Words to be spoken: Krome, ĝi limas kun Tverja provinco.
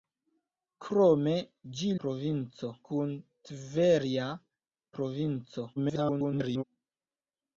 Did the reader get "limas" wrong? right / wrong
wrong